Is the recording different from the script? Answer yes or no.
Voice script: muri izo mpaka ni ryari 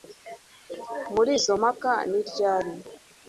no